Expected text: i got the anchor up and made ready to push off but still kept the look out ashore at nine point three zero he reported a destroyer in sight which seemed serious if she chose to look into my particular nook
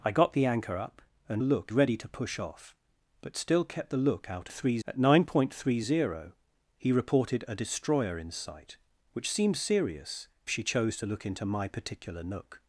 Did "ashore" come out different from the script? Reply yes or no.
yes